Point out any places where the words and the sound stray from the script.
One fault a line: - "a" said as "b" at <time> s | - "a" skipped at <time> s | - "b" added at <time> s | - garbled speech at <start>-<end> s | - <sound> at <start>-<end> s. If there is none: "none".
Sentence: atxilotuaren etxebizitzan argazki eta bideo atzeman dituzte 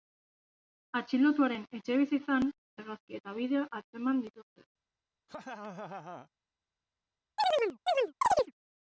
- laugh at 5.3-6.3 s
- chirp at 7.4-8.5 s